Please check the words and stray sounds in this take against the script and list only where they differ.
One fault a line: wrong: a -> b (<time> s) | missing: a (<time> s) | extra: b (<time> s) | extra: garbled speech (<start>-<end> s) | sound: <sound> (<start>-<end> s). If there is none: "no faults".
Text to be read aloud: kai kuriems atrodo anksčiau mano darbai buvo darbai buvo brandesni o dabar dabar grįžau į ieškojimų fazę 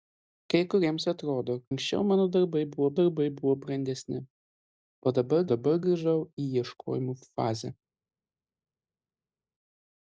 no faults